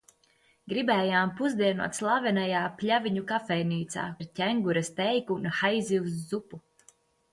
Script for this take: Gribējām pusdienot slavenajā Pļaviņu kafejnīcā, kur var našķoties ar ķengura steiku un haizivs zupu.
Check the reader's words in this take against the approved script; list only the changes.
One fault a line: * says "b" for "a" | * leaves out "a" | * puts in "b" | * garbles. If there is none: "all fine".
* leaves out "kur var našķoties"